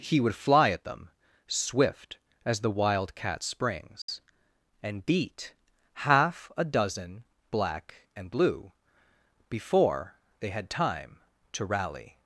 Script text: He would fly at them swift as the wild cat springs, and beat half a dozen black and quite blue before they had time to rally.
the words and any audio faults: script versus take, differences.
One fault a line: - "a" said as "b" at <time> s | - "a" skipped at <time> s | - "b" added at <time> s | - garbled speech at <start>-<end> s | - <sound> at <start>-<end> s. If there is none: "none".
- dropout at 4.0-4.1 s
- "quite" skipped at 8.3 s